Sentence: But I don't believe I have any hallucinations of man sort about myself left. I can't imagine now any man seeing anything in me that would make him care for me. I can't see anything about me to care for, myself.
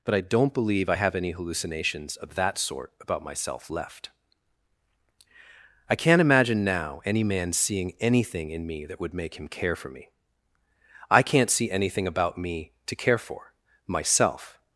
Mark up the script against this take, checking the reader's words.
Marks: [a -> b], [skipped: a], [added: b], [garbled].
But I don't believe I have any hallucinations of [man -> that] sort about myself left. I can't imagine now any man seeing anything in me that would make him care for me. I can't see anything about me to care for, myself.